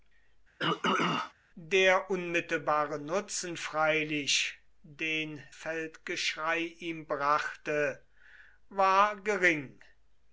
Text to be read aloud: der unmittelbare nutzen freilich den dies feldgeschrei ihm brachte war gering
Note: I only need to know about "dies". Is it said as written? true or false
false